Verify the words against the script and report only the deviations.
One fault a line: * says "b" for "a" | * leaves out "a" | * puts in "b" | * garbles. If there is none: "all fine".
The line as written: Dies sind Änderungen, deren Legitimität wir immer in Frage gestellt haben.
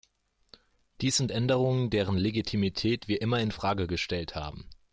all fine